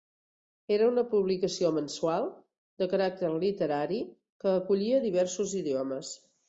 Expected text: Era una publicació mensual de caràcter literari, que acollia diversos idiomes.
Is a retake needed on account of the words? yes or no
no